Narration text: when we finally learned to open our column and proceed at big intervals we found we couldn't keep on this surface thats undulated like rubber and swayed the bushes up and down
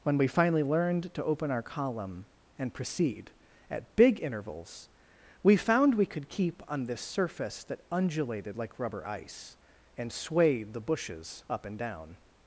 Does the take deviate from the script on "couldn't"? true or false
true